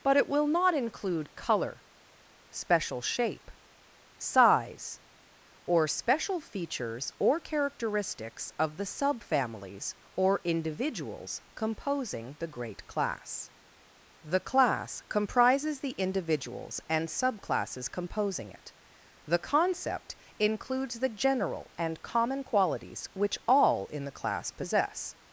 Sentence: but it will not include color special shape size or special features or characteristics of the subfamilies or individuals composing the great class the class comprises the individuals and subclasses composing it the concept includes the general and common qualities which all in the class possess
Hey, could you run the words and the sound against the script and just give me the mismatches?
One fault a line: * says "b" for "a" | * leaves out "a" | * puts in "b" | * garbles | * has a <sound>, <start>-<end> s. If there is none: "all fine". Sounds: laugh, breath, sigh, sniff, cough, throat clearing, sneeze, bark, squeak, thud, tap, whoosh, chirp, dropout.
all fine